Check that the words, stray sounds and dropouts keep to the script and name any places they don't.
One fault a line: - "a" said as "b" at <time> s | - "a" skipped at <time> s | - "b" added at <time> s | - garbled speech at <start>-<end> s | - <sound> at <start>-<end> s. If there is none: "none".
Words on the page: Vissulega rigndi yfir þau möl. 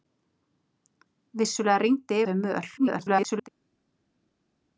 - "yfir" skipped at 2.2 s
- garbled speech at 2.8-3.5 s